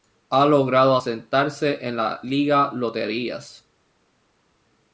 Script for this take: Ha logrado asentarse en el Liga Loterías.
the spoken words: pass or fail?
fail